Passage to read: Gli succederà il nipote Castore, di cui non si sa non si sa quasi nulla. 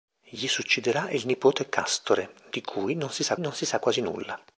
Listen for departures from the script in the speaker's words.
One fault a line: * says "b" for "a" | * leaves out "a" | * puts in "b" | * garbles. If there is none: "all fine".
all fine